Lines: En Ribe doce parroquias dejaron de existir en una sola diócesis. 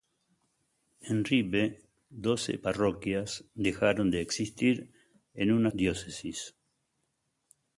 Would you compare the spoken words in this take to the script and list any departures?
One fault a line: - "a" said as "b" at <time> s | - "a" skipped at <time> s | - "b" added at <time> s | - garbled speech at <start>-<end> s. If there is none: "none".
- "sola" skipped at 5.7 s